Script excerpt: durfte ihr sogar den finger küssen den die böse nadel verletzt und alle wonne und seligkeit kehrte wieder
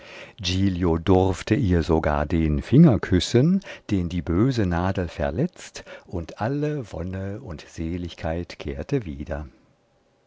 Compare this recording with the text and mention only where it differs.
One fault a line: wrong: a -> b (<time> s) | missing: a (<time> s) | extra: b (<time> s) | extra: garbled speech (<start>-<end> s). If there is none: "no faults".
no faults